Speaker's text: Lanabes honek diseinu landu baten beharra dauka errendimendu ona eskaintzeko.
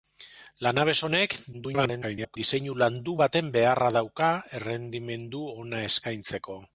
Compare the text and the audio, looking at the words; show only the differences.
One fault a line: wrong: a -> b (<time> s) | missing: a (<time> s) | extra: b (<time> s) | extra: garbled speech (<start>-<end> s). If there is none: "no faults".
extra: garbled speech (1.5-2.4 s)